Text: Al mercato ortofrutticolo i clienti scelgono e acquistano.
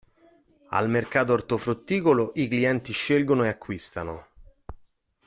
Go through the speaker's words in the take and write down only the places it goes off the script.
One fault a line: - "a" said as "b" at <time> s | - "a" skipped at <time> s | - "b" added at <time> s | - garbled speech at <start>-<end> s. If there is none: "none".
none